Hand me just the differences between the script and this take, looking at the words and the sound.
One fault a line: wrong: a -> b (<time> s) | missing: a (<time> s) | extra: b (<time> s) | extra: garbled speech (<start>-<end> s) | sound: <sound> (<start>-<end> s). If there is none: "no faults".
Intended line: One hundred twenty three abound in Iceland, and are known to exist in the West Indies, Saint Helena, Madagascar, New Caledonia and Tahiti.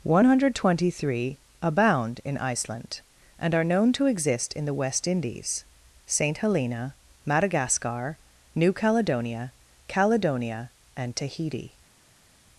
extra: Caledonia (9.9 s)